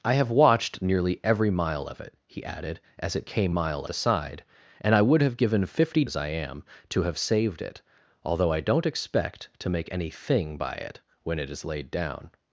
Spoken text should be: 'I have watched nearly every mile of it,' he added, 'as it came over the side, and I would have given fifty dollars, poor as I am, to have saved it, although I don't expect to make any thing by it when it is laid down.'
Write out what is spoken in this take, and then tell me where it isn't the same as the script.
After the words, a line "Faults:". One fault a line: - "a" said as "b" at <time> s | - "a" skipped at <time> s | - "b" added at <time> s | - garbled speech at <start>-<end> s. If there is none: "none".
'I have watched nearly every mile of it,' he added, 'as it came mile the side, and I would have given fifty as I am, to have saved it, although I don't expect to make any thing by it when it is laid down.'
Faults:
- "over" said as "mile" at 3.5 s
- "dollars poor" skipped at 6.0 s